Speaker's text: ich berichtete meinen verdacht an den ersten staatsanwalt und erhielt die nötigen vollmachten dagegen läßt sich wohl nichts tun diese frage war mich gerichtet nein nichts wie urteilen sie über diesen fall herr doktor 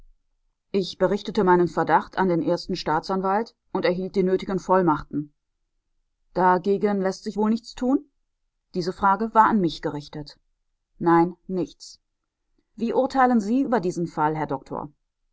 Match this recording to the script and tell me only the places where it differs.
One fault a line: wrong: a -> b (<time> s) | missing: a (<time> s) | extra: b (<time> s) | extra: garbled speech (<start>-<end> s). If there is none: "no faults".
extra: an (9.5 s)